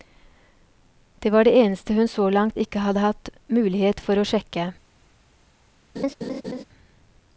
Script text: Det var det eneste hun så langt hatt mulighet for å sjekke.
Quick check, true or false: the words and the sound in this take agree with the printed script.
false